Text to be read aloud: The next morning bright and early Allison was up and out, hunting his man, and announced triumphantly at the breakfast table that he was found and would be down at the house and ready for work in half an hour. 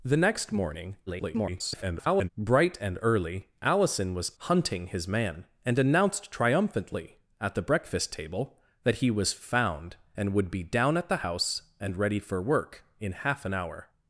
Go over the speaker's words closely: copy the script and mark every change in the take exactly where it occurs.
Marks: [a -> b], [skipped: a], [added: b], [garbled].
The next morning [garbled] bright and early Allison was [skipped: up and out,] hunting his man, and announced triumphantly at the breakfast table that he was found and would be down at the house and ready for work in half an hour.